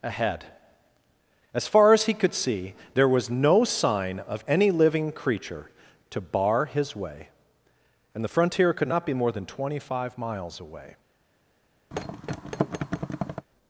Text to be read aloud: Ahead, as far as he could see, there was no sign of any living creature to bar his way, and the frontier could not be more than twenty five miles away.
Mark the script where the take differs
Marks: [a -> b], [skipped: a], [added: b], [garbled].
Ahead, as far as he could see, there was no sign of any living creature to bar his way, and the frontier could not be more than twenty five miles away.